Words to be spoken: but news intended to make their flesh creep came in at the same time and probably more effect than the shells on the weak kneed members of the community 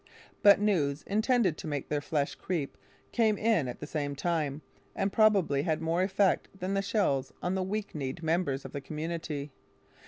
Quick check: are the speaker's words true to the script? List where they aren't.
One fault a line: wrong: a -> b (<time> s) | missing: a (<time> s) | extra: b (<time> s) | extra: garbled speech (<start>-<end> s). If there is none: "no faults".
extra: had (5.6 s)